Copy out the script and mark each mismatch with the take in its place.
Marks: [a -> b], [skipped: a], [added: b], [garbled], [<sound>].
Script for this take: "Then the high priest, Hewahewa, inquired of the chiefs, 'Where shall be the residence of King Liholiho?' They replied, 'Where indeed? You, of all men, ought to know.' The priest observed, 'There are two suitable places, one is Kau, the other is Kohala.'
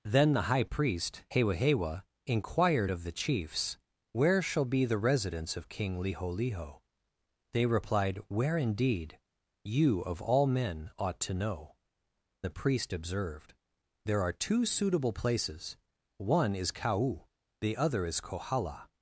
"Then the high priest, Hewahewa, inquired of the chiefs, 'Where shall be the residence of King Liholiho?' They replied, 'Where indeed? You, of all men, ought to know.' The priest observed, 'There are two suitable places, one is Kau, the other is Kohala.'